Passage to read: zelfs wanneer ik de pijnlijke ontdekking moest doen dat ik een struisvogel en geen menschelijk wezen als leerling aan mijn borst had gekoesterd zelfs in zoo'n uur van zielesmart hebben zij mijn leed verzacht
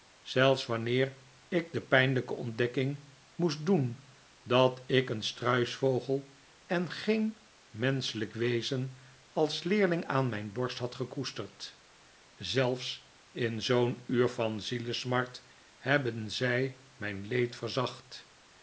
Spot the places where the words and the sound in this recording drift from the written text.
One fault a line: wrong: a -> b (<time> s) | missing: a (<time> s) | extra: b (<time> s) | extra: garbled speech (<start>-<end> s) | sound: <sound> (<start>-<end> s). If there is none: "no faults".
no faults